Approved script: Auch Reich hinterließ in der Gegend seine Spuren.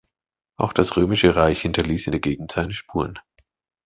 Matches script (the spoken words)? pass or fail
fail